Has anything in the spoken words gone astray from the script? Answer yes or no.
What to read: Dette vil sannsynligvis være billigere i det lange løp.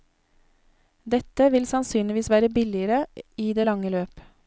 no